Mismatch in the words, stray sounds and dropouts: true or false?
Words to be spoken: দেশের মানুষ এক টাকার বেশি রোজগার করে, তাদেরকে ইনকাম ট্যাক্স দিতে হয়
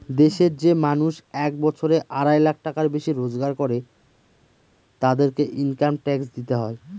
true